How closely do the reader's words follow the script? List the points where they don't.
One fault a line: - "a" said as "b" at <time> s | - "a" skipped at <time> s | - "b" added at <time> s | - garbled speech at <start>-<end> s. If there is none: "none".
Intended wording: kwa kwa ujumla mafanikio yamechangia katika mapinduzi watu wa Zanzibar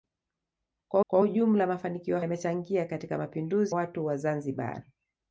none